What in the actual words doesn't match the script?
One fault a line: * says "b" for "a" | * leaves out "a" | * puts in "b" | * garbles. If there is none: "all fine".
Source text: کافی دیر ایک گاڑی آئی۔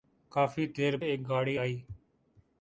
all fine